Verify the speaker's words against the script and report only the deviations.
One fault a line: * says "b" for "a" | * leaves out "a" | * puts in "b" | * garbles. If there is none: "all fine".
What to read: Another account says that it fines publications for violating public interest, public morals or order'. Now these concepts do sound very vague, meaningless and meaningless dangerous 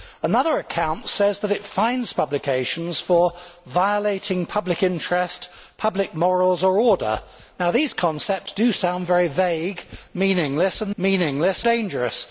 all fine